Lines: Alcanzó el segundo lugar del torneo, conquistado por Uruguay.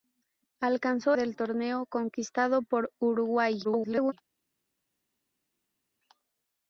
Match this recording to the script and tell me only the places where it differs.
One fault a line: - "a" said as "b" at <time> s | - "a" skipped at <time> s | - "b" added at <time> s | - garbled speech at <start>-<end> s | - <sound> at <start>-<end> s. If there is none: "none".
- "el segundo lugar" skipped at 1.1 s
- garbled speech at 3.6-4.1 s